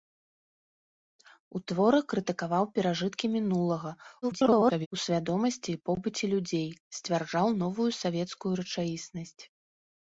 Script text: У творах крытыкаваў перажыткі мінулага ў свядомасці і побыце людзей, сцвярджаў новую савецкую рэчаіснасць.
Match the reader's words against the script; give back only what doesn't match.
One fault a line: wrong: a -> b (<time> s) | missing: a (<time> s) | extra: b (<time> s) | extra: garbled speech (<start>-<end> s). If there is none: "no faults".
extra: garbled speech (4.2-4.9 s)